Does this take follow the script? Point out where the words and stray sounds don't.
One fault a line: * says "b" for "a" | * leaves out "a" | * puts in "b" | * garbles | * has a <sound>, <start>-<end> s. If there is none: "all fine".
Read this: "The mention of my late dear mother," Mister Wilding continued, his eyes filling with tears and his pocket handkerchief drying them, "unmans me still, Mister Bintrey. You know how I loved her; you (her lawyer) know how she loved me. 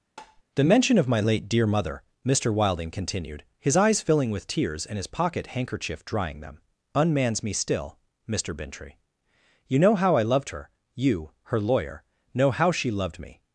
* has a tap, 0.2-0.4 s